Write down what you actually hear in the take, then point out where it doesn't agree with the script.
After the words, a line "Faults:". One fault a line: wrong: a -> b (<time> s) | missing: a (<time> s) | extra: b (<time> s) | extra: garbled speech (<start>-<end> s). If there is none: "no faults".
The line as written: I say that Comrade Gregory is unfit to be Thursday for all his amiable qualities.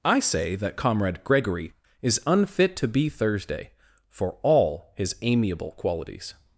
I say that Comrade Gregory is unfit to be Thursday for all his amiable qualities.
Faults:
no faults